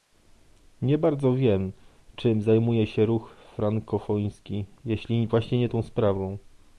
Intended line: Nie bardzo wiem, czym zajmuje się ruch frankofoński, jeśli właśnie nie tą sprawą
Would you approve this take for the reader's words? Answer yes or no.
yes